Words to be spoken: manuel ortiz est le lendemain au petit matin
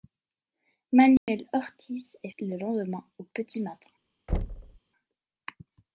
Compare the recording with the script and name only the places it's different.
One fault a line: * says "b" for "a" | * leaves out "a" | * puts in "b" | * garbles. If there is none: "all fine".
all fine